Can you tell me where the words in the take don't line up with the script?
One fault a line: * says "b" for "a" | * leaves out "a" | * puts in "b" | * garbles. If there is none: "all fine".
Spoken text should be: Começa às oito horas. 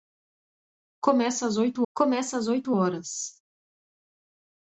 * puts in "começa às oito"